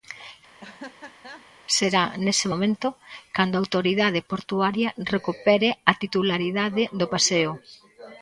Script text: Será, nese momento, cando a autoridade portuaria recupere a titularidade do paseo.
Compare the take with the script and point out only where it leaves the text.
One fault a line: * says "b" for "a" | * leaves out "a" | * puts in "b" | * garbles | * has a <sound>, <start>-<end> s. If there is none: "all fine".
* has a laugh, 0.6-1.5 s